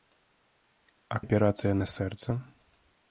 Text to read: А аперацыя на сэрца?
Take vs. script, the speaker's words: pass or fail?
pass